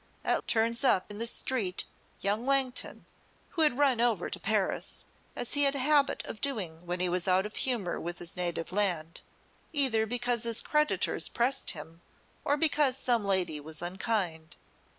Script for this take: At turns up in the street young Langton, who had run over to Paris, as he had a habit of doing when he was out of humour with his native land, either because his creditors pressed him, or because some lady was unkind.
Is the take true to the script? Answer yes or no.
yes